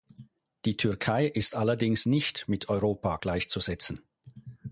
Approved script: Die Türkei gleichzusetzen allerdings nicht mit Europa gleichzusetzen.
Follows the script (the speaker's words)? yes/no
no